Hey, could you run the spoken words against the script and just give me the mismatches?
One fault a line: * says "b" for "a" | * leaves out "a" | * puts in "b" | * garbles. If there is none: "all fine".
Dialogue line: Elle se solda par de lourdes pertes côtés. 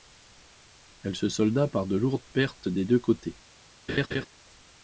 * puts in "des deux"